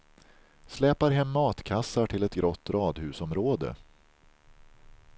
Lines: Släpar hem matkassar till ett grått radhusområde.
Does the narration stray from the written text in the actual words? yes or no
no